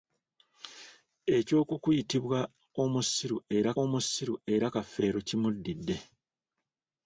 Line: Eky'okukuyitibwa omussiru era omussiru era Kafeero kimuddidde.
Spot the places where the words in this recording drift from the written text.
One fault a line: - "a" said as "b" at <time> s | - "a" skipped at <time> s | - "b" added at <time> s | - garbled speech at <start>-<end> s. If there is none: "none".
none